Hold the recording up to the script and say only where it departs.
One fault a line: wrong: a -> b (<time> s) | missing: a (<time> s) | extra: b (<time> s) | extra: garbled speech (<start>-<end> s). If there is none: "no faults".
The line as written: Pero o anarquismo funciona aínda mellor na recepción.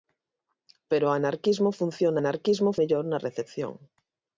wrong: aínda -> anarquismo (2.2 s)